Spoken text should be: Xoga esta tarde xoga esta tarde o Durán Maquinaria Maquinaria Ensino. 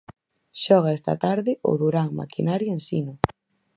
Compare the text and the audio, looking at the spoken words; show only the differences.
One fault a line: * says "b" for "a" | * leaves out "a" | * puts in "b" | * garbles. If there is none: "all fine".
* leaves out "xoga esta tarde"
* leaves out "Maquinaria"